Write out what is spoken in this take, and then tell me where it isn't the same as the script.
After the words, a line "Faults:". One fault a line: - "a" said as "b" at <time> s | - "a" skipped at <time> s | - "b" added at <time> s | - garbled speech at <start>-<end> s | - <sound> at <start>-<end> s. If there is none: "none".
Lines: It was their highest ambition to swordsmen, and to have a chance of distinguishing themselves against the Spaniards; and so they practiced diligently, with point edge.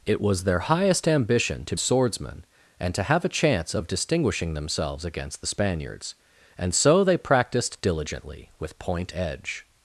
It was their highest ambition to swordsmen, and to have a chance of distinguishing themselves against the Spaniards; and so they practiced diligently, with point edge.
Faults:
none